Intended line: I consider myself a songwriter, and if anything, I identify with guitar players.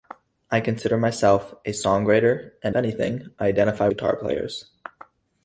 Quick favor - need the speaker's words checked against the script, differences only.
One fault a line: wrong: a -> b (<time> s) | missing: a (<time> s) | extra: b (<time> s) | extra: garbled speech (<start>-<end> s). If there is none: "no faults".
missing: if (2.7 s)
missing: with (3.9 s)